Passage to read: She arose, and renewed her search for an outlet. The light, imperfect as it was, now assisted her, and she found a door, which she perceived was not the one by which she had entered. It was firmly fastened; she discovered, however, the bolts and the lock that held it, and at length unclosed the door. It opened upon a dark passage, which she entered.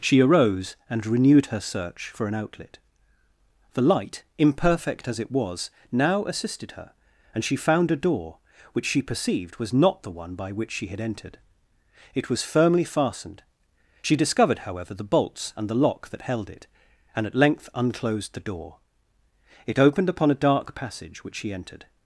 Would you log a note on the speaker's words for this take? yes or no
no